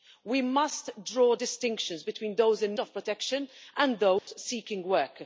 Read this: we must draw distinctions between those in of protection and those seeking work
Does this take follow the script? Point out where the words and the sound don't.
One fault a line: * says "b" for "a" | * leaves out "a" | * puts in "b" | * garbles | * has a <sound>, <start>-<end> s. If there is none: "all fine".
* has a dropout, 4.2-4.3 s